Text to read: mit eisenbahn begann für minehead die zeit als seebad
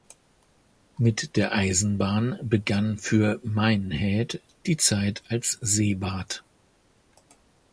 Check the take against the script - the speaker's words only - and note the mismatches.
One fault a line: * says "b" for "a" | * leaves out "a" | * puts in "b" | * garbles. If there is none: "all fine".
* puts in "der"